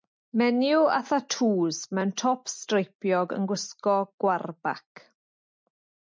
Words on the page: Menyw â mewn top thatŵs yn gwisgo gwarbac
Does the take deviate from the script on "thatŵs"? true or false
true